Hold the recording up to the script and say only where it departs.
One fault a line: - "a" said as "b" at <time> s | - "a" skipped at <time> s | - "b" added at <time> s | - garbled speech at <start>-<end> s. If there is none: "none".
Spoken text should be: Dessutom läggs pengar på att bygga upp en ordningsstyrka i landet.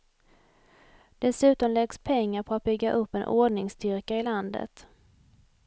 none